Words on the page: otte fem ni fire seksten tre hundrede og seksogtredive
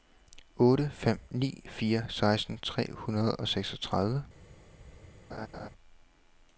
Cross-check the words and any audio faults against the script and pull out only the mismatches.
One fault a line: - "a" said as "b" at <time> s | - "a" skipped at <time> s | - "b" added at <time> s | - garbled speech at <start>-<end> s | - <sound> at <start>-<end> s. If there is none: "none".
- laugh at 5.3-5.7 s